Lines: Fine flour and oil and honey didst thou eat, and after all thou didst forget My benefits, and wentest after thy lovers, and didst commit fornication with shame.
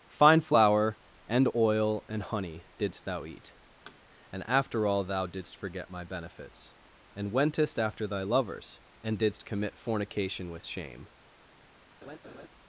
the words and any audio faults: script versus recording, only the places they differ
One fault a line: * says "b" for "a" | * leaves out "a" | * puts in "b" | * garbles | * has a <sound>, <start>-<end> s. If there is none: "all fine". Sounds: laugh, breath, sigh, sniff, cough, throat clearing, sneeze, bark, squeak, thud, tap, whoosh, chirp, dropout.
* has a thud, 3.9-4.0 s
* has a laugh, 12.0-12.5 s